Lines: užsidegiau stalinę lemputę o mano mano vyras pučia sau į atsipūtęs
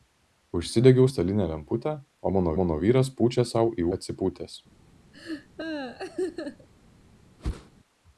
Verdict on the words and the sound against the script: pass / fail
fail